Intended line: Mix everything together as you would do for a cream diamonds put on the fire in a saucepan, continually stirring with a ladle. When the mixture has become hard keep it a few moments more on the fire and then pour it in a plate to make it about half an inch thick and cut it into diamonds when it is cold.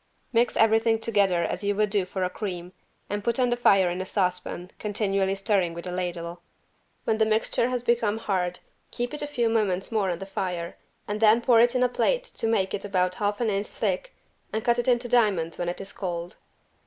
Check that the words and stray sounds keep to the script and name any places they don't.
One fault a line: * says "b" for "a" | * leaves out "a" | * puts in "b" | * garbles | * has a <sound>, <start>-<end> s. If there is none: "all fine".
* says "and" for "diamonds"